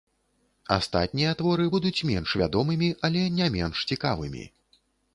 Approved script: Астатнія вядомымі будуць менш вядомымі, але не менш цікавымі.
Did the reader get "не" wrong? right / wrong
right